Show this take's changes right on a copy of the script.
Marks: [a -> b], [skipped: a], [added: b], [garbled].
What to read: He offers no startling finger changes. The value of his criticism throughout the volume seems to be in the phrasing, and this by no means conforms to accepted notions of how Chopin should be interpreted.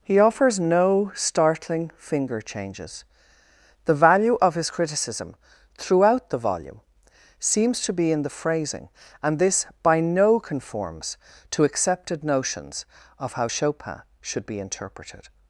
He offers no startling finger changes. The value of his criticism throughout the volume seems to be in the phrasing, and this by no [skipped: means] conforms to accepted notions of how Chopin should be interpreted.